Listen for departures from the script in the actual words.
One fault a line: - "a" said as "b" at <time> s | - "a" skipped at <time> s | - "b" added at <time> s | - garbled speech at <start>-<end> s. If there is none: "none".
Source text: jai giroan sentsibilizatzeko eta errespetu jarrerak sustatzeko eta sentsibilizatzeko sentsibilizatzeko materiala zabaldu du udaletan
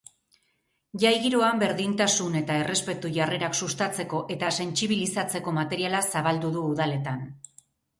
- "sentsibilizatzeko" said as "berdintasun" at 1.6 s
- "sentsibilizatzeko" skipped at 5.6 s